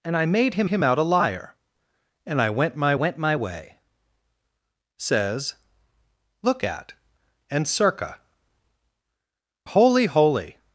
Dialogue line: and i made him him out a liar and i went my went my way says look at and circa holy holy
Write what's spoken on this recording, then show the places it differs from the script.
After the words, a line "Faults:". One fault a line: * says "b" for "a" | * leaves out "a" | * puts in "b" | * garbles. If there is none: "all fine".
and i made him him out a liar and i went my went my way says look at and circa holy holy
Faults:
all fine